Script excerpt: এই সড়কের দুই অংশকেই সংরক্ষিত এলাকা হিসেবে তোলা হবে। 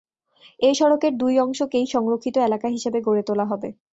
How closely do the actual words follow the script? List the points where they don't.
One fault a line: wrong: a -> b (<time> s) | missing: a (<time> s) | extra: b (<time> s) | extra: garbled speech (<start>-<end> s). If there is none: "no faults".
extra: গড়ে (3.0 s)